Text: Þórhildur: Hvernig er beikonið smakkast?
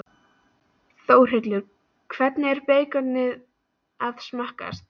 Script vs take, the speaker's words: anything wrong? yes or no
yes